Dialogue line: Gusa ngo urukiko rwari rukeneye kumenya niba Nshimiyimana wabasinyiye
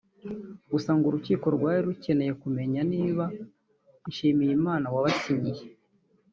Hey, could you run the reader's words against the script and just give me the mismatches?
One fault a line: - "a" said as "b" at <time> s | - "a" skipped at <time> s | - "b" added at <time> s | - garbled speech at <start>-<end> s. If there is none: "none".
none